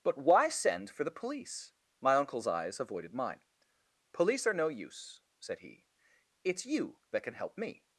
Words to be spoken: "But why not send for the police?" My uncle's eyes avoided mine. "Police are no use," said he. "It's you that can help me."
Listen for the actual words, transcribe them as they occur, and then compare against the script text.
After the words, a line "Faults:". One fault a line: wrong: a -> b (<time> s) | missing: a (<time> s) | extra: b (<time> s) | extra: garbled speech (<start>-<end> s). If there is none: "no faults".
"But why send for the police?" My uncle's eyes avoided mine. "Police are no use," said he. "It's you that can help me."
Faults:
missing: not (0.5 s)